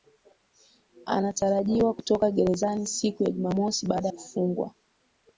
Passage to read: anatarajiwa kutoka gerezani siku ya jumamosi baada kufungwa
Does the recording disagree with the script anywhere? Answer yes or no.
no